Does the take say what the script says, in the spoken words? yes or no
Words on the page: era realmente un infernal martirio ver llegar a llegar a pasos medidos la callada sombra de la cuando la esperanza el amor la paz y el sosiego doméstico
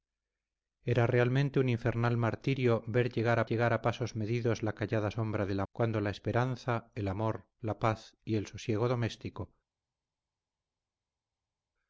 yes